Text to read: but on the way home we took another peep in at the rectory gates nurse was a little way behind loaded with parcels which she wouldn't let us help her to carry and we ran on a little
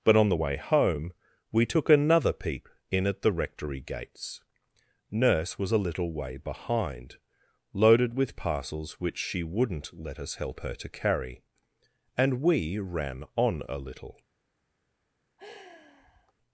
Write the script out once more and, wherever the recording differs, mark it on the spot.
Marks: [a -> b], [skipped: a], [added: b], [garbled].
but on the way home we took another peep in at the rectory gates nurse was a little way behind loaded with parcels which she wouldn't let us help her to carry and we ran on a little